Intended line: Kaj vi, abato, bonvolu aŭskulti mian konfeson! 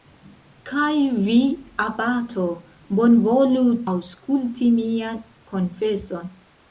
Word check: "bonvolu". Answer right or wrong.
right